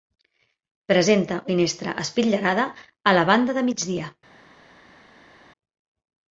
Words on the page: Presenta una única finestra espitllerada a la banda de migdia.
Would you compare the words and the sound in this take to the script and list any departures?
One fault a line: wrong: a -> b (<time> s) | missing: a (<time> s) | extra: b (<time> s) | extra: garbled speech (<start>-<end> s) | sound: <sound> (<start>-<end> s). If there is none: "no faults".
missing: una única (1.4 s)